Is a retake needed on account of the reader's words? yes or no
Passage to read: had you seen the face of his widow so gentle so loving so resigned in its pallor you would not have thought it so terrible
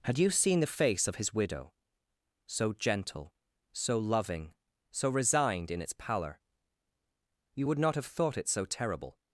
no